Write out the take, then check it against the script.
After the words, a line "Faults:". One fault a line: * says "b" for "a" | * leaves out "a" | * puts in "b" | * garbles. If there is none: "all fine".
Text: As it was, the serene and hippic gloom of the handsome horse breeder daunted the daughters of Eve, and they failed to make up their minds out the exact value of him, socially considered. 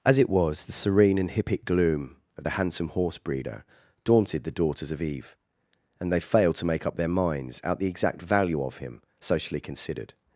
As it was, the serene and hippic gloom of the handsome horse breeder daunted the daughters of Eve, and they failed to make up their minds out the exact value of him, socially considered.
Faults:
all fine